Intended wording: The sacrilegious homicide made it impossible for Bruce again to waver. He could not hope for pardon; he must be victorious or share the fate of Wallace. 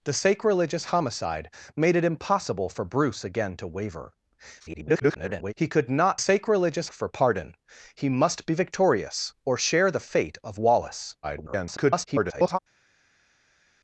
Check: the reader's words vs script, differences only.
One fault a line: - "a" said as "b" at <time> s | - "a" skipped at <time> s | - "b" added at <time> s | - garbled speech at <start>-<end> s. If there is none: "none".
- garbled speech at 4.6-5.5 s
- "hope" said as "sacrilegious" at 6.2 s
- garbled speech at 11.2-12.6 s